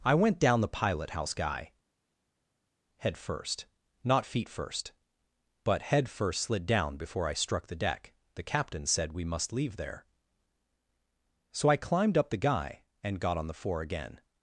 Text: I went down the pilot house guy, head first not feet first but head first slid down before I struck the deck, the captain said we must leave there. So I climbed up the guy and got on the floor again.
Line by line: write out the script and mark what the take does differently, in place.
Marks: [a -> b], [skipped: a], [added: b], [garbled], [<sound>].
I went down the pilot house guy, head first not feet first but head first slid down before I struck the deck, the captain said we must leave there. So I climbed up the guy and got on the [floor -> four] again.